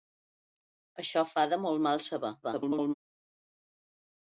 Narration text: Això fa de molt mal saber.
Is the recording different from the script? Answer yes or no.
yes